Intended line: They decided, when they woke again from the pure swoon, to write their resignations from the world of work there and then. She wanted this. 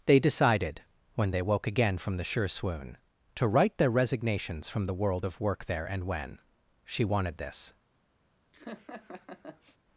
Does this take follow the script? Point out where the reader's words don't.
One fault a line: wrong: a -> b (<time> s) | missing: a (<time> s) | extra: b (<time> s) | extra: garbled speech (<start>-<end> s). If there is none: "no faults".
wrong: pure -> sure (2.2 s)
wrong: then -> when (6.0 s)